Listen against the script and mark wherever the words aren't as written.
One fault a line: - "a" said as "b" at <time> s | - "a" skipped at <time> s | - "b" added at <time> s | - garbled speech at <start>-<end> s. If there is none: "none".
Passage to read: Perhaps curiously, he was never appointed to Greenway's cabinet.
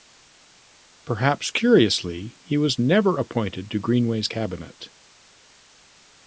none